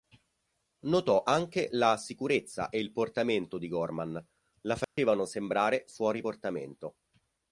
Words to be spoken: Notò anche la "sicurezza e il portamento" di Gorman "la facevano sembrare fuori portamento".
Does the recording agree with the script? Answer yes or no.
yes